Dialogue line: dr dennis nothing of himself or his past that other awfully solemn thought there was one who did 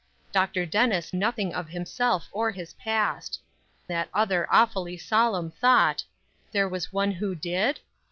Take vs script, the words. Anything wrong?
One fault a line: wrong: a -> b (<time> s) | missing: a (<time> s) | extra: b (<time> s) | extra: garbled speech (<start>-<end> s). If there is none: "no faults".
no faults